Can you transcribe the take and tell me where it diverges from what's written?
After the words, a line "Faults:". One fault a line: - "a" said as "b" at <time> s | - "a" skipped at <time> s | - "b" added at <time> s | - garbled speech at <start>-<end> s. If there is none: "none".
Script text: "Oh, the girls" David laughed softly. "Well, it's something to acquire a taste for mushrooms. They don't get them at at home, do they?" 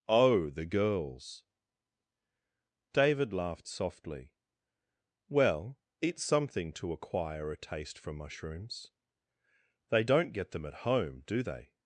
"Oh, the girls" David laughed softly. "Well, it's something to acquire a taste for mushrooms. They don't get them at home, do they?"
Faults:
- "at" skipped at 10.8 s